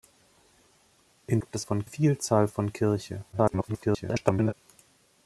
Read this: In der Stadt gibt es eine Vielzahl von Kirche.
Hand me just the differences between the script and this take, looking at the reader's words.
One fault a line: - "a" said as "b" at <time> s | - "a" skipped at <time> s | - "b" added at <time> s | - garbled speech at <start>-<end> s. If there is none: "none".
- "der Stadt" skipped at 1.4 s
- "eine" said as "von" at 1.6 s
- garbled speech at 3.3-4.5 s